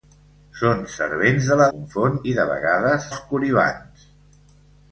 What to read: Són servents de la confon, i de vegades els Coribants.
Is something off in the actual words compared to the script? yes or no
no